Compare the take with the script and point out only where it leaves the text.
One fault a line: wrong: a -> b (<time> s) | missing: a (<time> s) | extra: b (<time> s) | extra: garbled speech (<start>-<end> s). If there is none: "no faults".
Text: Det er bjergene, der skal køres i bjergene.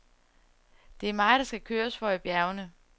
wrong: bjergene -> mig (1.1 s)
extra: for (2.0 s)